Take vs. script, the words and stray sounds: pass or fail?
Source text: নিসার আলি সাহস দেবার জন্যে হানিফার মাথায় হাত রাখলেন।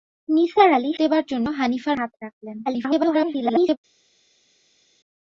fail